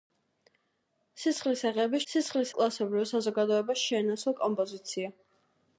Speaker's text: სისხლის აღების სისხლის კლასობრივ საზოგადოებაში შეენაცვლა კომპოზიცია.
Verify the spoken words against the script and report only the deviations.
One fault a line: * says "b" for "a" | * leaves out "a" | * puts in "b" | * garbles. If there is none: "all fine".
all fine